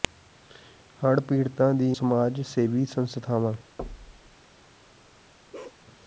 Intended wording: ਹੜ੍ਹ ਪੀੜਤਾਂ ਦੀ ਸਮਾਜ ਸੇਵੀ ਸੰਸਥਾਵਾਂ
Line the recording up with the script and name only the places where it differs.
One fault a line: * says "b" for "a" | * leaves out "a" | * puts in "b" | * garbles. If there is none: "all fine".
all fine